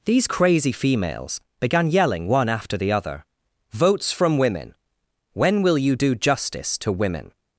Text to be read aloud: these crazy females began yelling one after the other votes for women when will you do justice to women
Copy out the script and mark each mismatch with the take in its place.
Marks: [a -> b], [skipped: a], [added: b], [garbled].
these crazy females began yelling one after the other votes [for -> from] women when will you do justice to women